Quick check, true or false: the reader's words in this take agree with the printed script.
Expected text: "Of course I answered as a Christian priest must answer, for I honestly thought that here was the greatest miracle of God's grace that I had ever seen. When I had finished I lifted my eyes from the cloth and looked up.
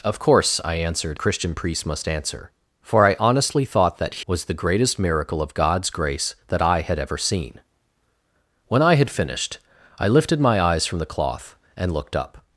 false